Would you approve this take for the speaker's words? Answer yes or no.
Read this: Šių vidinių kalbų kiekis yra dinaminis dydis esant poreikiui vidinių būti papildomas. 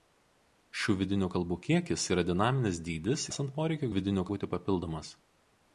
yes